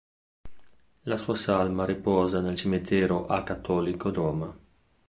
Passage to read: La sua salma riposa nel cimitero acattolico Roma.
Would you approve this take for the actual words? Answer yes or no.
yes